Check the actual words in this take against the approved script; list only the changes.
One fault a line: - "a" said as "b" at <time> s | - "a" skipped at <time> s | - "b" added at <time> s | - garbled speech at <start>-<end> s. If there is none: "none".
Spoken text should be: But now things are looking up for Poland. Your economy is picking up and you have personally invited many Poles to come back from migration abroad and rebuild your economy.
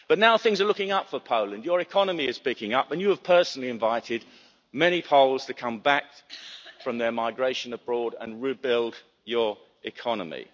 - "their" added at 7.0 s